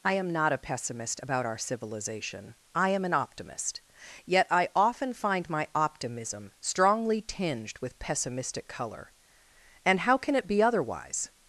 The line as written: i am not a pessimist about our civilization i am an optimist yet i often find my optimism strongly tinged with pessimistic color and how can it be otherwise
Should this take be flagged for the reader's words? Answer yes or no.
no